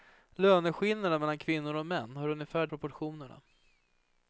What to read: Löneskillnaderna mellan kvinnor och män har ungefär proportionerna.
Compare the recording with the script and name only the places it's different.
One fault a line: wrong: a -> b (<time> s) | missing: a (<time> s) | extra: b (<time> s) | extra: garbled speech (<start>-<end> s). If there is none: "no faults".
no faults